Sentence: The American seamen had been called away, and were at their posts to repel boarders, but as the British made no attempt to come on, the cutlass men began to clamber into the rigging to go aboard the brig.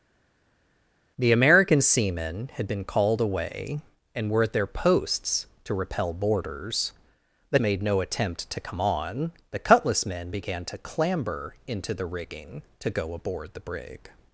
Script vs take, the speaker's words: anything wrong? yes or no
yes